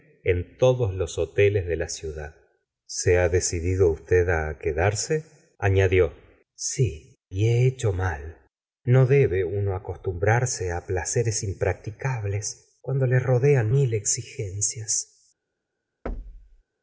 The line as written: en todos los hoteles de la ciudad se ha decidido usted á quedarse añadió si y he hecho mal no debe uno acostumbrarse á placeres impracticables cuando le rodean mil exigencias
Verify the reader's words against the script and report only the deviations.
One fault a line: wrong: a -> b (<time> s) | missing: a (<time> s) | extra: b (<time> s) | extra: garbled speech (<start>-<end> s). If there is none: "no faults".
no faults